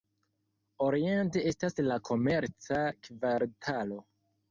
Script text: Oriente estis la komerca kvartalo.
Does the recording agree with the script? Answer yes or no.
no